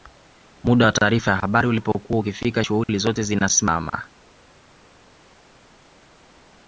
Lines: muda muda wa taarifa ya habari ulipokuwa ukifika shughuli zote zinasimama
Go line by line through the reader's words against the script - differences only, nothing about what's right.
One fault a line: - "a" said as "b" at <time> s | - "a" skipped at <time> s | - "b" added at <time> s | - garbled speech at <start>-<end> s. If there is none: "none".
- "muda" skipped at 0.8 s